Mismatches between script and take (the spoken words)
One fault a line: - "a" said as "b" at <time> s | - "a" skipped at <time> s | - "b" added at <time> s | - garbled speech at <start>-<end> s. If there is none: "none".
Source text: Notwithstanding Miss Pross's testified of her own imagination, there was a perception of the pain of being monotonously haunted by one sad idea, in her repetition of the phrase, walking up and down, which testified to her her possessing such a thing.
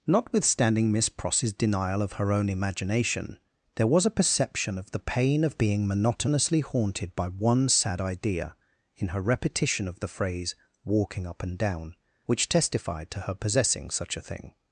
- "testified" said as "denial" at 1.5 s
- "her" skipped at 13.3 s